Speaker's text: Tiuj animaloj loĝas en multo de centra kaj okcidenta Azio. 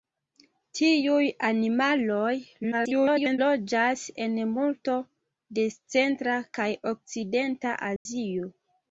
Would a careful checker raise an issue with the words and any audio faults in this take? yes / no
yes